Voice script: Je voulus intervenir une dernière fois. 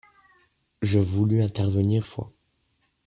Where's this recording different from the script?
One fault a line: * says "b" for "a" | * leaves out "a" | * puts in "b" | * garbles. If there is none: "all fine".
* leaves out "une dernière"